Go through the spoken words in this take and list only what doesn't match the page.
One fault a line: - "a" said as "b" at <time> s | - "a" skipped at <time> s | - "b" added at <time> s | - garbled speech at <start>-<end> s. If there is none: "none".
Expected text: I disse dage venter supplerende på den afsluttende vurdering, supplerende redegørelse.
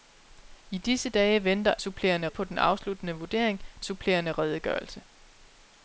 none